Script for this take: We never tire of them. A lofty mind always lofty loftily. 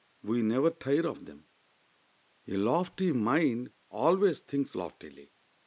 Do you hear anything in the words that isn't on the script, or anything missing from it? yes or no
yes